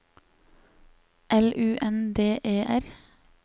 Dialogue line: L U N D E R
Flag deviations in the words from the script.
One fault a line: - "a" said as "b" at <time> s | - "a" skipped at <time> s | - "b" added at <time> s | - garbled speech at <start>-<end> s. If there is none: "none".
none